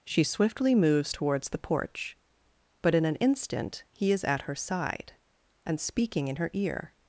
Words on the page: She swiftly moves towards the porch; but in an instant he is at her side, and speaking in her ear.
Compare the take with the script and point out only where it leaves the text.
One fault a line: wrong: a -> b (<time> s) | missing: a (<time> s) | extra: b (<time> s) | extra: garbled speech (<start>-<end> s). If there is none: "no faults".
no faults